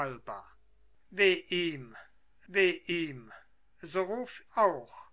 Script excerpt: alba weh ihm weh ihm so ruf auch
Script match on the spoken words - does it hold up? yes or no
yes